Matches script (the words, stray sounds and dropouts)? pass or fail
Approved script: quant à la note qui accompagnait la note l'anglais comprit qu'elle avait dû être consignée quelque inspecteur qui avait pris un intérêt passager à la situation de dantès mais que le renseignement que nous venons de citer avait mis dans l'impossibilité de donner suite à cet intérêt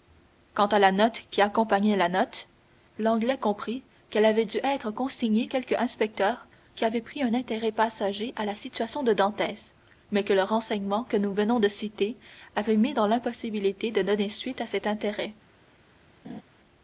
fail